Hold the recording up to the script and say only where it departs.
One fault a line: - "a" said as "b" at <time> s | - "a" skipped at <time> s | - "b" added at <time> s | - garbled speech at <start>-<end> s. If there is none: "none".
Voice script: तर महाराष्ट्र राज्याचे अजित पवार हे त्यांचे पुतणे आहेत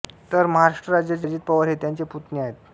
none